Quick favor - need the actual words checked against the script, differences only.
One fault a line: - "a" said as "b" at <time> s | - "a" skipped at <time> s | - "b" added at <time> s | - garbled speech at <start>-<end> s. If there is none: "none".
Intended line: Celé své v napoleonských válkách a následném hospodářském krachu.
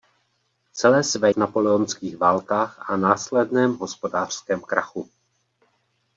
none